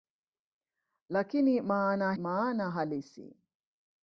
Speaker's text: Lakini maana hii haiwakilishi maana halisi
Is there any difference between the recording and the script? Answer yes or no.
yes